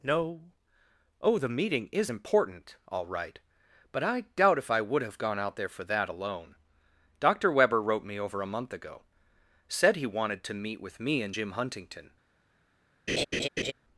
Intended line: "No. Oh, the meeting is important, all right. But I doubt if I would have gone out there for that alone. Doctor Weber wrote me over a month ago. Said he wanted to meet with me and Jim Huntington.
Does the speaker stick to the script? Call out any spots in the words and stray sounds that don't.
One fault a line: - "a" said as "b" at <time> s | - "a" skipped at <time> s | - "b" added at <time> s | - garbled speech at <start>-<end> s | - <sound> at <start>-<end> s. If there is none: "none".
- laugh at 13.1-13.7 s